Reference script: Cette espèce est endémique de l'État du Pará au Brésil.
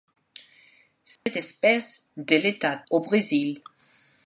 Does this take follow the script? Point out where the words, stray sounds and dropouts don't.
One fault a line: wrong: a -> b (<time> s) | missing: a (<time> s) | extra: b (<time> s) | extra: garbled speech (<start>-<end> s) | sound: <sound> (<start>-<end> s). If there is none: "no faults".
sound: dropout (1.2-1.3 s)
missing: est endémique (2.1 s)
missing: du Pará (2.8 s)